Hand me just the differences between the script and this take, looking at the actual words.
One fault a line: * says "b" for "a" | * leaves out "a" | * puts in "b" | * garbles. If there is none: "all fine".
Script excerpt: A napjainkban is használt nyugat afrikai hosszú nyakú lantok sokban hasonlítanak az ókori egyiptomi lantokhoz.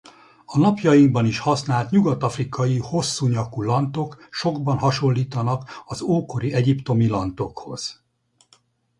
all fine